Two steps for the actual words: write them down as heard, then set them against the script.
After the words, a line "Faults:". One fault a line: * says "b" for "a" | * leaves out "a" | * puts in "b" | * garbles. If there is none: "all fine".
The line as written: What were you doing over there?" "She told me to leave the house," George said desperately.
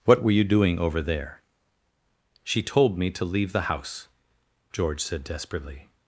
What were you doing over there?" "She told me to leave the house," George said desperately.
Faults:
all fine